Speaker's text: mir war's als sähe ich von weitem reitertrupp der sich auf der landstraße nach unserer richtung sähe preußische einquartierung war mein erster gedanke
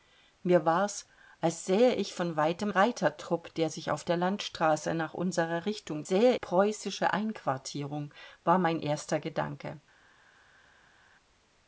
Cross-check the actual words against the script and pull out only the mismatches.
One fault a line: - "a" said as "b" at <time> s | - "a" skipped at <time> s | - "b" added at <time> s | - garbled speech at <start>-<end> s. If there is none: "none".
none